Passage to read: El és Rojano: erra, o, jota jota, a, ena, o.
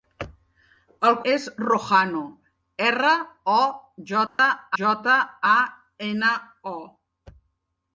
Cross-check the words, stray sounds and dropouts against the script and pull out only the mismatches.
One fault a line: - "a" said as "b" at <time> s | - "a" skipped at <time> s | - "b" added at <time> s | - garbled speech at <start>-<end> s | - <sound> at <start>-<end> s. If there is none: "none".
- dropout at 4.3-4.4 s